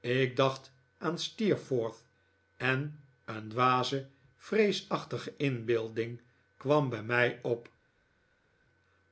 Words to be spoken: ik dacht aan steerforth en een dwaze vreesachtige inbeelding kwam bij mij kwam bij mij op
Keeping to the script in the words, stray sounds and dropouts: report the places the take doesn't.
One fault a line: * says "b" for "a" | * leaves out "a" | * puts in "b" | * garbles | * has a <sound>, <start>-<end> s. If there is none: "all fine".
* leaves out "kwam bij mij"